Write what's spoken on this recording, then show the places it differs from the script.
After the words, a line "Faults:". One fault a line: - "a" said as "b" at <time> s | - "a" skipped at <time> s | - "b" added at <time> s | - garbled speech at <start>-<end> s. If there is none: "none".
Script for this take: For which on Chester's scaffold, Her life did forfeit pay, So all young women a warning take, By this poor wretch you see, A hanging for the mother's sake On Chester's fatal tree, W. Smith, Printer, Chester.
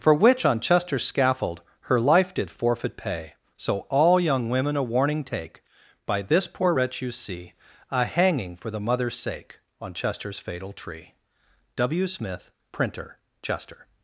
For which on Chester's scaffold, Her life did forfeit pay, So all young women a warning take, By this poor wretch you see, A hanging for the mother's sake On Chester's fatal tree, W. Smith, Printer, Chester.
Faults:
none